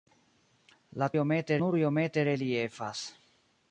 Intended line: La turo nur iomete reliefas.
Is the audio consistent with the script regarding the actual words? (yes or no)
no